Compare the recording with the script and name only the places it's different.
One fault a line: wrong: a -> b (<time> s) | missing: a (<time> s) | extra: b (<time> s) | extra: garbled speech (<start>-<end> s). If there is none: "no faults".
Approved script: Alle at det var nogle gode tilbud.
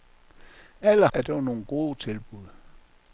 no faults